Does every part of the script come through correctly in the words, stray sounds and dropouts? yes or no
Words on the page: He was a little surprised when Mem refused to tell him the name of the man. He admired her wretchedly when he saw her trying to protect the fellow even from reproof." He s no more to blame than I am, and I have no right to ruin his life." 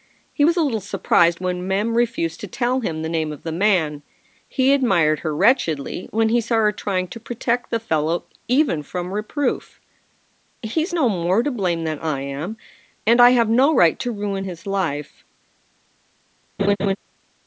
no